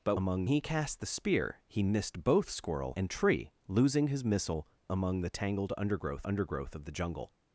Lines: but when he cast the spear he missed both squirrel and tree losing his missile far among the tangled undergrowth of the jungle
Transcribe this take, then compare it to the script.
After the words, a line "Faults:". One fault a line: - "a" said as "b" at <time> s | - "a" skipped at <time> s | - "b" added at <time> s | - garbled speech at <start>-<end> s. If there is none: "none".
but among he cast the spear he missed both squirrel and tree losing his missile among the tangled undergrowth undergrowth of the jungle
Faults:
- "when" said as "among" at 0.1 s
- "far" skipped at 4.7 s
- "undergrowth" added at 6.2 s